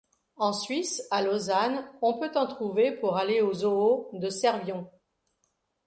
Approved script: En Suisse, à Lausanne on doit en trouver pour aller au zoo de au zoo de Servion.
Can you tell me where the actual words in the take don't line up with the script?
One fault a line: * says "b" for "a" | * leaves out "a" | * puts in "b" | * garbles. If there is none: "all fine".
* says "peut" for "doit"
* leaves out "au zoo de"